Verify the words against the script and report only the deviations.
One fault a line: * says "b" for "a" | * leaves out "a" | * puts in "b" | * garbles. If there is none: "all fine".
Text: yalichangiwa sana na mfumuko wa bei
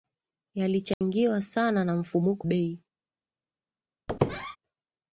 * leaves out "wa"